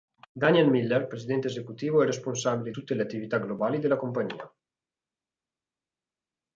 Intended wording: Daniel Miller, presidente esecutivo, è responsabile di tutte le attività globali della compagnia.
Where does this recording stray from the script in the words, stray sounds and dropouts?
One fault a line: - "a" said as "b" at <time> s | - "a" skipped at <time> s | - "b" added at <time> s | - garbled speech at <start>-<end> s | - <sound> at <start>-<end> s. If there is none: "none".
- "di" skipped at 2.7 s